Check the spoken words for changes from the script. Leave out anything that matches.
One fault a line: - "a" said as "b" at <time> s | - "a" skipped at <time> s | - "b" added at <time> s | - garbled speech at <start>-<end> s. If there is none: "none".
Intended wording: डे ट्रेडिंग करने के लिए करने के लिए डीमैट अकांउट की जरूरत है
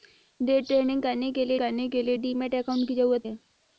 none